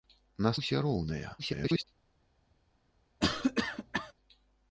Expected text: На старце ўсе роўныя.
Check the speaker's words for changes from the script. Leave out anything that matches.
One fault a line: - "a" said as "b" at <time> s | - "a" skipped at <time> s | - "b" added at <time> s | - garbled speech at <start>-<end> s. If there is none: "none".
- "старце" skipped at 0.5 s
- garbled speech at 1.4-1.8 s